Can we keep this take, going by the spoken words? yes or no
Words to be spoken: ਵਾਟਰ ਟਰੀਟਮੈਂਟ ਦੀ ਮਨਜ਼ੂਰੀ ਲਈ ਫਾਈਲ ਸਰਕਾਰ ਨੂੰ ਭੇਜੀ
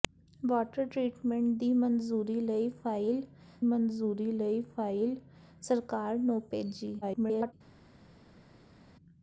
no